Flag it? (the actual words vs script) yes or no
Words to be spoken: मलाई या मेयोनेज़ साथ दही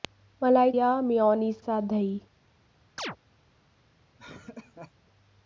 no